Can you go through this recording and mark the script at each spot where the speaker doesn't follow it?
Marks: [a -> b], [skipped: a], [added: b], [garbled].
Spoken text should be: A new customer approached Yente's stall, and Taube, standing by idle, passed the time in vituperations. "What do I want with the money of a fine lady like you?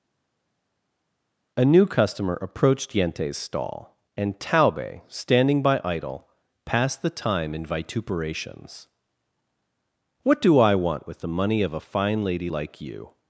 A new customer approached Yente's stall, and Taube, standing by idle, passed the time in vituperations. "What do I want with the money of a fine lady like you?